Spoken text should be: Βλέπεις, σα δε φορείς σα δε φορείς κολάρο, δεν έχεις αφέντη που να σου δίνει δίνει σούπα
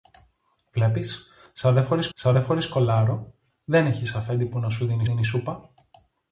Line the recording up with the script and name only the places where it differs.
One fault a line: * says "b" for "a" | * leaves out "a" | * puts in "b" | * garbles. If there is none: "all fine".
all fine